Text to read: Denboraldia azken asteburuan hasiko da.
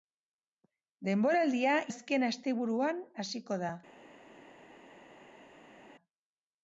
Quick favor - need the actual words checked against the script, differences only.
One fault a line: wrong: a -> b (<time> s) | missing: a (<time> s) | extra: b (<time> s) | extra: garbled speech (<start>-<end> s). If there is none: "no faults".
no faults